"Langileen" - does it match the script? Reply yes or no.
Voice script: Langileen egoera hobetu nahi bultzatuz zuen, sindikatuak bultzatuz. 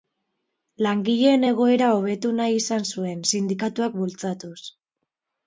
yes